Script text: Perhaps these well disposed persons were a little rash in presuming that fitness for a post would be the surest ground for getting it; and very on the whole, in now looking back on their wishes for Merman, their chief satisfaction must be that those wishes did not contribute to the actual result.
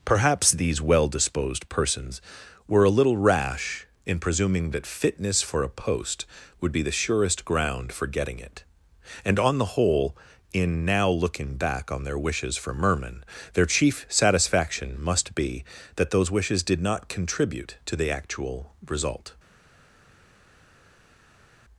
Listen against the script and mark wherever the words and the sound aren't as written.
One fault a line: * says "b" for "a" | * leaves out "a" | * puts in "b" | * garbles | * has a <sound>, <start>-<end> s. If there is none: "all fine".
* leaves out "very"